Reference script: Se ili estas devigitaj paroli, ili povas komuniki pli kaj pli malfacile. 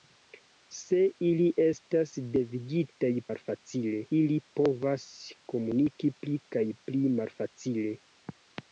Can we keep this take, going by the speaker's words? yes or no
no